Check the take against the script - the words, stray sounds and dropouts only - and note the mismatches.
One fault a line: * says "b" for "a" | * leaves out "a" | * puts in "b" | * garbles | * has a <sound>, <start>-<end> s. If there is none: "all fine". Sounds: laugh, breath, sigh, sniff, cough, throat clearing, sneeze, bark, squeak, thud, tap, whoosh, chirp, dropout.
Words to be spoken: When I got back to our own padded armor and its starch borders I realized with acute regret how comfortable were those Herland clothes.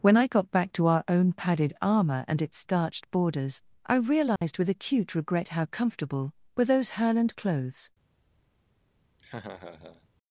* says "starched" for "starch"
* has a dropout, 4.4-4.4 s
* has a laugh, 9.2-10.1 s